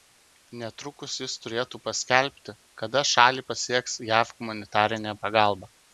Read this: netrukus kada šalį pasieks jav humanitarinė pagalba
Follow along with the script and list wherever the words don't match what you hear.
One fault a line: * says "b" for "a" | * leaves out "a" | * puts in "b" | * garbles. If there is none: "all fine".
* puts in "jis turėtų paskelbti"